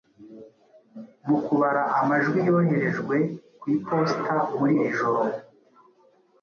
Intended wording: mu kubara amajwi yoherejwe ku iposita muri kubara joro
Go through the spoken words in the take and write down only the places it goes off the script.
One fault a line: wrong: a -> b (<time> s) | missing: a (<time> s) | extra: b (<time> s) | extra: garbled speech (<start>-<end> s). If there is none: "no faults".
wrong: kubara -> iri (4.8 s)